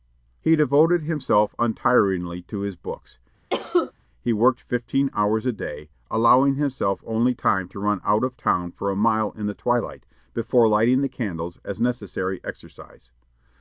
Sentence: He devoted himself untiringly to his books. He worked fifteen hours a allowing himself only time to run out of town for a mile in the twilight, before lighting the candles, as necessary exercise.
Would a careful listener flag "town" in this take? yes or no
no